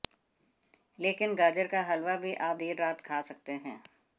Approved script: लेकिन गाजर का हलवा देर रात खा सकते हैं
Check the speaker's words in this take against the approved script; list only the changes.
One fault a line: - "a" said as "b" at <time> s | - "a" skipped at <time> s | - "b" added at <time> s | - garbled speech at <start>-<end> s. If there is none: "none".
- "भी आप" added at 2.2 s